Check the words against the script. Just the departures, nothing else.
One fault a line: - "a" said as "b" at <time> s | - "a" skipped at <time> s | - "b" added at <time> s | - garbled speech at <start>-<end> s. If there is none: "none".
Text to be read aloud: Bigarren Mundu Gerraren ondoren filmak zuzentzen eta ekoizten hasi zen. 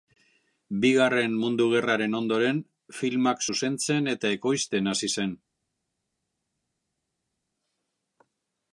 none